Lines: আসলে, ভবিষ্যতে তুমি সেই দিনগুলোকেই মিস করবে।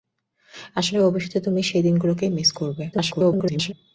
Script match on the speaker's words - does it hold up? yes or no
no